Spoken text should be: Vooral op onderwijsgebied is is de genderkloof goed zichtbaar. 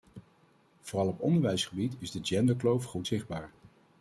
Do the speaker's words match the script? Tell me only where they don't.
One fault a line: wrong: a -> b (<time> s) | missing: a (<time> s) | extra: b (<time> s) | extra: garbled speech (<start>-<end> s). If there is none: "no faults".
missing: is (2.1 s)